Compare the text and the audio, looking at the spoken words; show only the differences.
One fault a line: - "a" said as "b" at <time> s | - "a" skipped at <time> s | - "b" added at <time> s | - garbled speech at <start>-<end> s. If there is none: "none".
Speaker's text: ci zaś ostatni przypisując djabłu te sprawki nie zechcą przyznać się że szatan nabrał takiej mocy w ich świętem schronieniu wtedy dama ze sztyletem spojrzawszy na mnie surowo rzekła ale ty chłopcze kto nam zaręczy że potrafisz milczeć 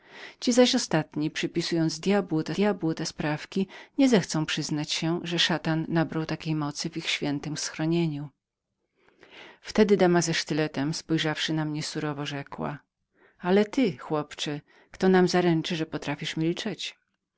- "djabłu te" added at 2.5 s